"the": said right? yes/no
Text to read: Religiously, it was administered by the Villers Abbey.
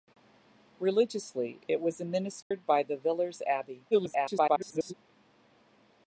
yes